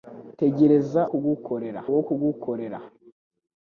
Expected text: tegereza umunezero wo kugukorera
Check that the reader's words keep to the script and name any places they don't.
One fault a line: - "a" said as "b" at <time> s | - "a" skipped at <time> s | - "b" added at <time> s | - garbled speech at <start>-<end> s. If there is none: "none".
- "umunezero" said as "kugukorera" at 1.1 s